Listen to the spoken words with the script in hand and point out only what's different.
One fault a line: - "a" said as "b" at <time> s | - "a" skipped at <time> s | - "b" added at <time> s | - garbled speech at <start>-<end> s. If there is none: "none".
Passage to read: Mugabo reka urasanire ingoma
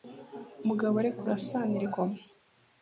none